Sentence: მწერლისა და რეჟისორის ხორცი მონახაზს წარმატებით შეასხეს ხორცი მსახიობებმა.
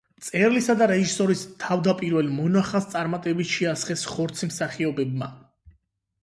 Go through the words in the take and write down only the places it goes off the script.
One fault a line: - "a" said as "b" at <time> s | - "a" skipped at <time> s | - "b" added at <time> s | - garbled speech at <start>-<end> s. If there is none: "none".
- "ხორცი" said as "თავდაპირველ" at 1.6 s